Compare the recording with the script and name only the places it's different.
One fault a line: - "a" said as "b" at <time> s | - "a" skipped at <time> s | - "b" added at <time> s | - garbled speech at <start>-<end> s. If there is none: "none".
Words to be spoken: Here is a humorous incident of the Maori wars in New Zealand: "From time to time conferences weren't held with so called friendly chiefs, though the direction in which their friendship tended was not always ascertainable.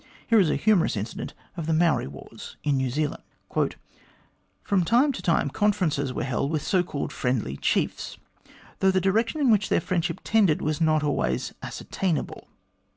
- "weren't" said as "were" at 6.1 s